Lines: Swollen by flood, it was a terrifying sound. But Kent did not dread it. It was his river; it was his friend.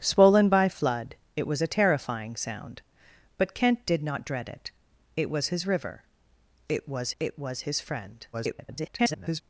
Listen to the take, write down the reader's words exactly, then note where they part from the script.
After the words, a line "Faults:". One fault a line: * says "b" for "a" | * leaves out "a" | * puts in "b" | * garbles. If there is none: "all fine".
Swollen by flood, it was a terrifying sound. But Kent did not dread it. It was his river; it was it was his friend. [garbled]
Faults:
* puts in "it was"
* garbles